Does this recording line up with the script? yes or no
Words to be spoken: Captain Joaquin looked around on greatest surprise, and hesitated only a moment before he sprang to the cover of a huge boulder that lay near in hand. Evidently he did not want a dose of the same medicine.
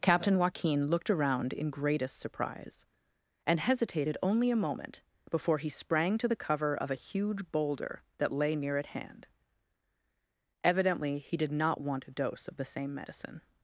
no